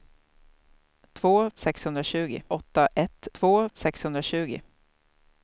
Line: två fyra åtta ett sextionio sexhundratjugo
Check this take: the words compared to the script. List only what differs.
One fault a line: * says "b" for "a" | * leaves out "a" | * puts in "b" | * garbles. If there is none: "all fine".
* says "sexhundratjugo" for "fyra"
* says "två" for "sextionio"